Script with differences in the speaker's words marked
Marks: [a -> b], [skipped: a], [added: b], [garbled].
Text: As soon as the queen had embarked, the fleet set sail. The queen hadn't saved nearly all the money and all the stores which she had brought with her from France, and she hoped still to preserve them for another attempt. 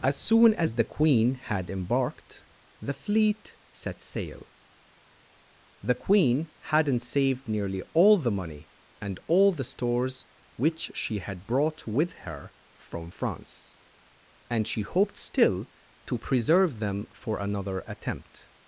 As soon as the queen had embarked, the fleet set sail. The queen hadn't saved nearly all the money and all the stores which she had brought with her from France, and she hoped still to preserve them for another attempt.